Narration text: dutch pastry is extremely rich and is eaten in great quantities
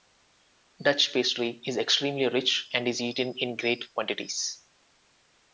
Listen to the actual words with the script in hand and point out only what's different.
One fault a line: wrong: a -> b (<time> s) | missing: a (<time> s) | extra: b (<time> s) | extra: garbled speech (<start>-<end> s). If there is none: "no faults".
no faults